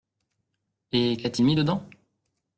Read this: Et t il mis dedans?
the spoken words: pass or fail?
fail